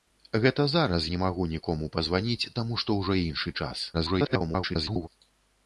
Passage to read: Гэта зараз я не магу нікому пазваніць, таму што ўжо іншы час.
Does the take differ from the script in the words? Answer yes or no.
yes